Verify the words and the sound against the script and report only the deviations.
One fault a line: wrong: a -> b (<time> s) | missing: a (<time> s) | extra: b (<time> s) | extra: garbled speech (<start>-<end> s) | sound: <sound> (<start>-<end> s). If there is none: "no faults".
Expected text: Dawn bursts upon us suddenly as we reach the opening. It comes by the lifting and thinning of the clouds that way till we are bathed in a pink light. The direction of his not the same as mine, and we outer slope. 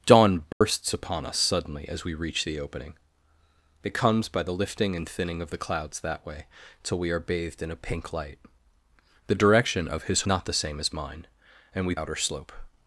sound: dropout (0.5-0.6 s)